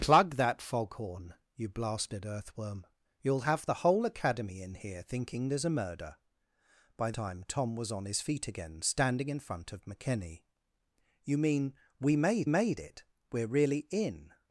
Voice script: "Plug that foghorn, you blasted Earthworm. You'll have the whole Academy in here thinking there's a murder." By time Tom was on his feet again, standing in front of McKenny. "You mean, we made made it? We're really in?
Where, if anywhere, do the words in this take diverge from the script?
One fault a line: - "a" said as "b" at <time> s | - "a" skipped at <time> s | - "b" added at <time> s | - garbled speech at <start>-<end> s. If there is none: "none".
none